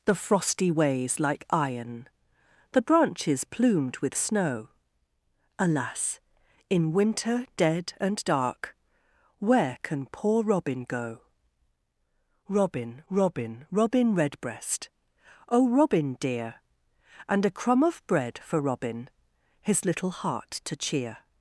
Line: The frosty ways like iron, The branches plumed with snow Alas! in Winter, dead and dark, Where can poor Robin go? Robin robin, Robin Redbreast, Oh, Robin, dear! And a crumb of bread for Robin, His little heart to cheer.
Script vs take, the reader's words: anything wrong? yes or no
no